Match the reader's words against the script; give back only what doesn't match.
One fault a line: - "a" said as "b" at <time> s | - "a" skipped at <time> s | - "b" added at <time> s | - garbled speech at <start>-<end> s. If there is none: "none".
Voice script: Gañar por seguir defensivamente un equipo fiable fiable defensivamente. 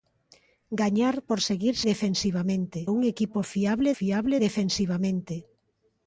none